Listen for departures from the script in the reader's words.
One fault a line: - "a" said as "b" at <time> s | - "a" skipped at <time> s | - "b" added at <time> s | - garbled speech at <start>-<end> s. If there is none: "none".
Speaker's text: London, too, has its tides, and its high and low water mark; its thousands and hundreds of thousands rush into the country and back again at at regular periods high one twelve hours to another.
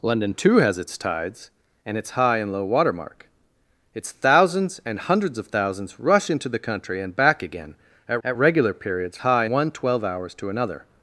none